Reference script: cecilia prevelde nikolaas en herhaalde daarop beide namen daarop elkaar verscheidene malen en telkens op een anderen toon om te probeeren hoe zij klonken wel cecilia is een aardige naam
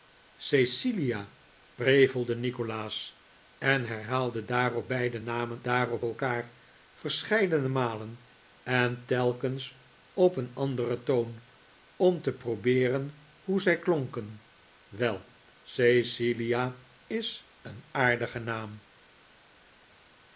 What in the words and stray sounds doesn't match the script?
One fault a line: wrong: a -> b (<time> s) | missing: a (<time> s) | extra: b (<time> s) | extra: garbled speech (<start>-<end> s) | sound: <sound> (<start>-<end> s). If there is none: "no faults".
no faults